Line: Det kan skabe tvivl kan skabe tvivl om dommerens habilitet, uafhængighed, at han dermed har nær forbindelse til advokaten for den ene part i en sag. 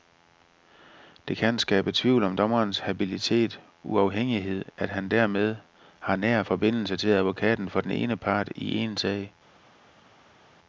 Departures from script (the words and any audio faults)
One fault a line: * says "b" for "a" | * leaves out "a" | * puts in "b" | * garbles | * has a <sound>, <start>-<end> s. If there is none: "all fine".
* leaves out "kan skabe tvivl"